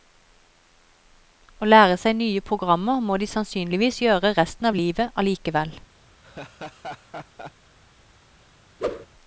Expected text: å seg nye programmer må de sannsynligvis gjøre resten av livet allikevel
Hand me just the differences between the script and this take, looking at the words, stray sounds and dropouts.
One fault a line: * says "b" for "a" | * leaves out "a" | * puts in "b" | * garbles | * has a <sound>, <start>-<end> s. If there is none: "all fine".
* puts in "lære"
* has a laugh, 6.2-7.5 s
* has a whoosh, 8.8-9.1 s